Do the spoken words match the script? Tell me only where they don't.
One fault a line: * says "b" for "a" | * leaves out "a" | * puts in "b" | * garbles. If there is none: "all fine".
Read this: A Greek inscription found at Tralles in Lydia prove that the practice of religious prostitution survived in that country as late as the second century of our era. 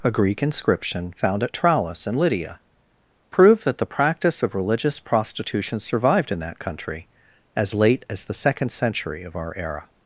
all fine